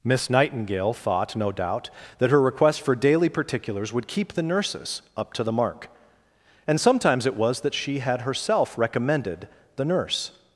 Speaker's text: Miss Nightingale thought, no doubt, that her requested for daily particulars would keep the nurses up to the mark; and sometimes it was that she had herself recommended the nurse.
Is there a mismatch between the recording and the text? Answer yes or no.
yes